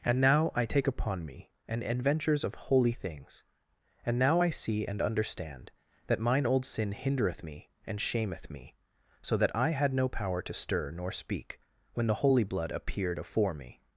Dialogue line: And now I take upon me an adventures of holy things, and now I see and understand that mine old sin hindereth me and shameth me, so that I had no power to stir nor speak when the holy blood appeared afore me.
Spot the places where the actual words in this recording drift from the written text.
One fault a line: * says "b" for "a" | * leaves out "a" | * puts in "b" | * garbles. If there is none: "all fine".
all fine